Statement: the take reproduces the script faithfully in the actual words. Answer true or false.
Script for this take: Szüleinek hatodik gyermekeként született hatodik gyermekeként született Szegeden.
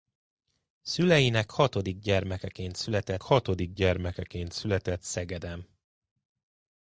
true